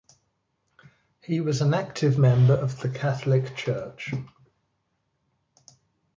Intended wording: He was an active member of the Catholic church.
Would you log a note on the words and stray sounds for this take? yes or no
no